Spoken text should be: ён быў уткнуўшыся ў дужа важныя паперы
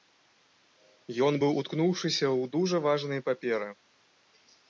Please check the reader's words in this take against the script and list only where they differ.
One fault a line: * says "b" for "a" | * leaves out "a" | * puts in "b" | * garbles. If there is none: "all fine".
all fine